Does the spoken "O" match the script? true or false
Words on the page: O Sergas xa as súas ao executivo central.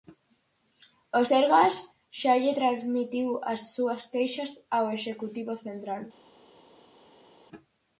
true